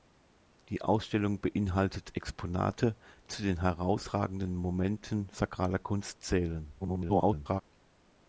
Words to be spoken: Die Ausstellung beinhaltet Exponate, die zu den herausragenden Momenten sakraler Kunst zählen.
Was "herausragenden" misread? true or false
false